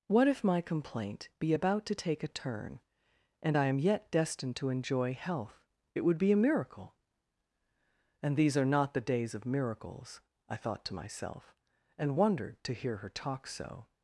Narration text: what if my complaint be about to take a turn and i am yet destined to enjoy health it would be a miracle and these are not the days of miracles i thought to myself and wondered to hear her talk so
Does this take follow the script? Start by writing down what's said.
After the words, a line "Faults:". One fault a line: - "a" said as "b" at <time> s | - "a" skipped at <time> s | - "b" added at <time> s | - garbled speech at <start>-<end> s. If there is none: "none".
what if my complaint be about to take a turn and i am yet destined to enjoy health it would be a miracle and these are not the days of miracles i thought to myself and wondered to hear her talk so
Faults:
none